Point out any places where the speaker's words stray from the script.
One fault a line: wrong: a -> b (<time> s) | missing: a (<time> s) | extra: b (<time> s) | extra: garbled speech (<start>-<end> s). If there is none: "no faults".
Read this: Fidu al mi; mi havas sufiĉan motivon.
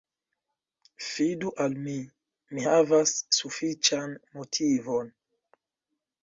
no faults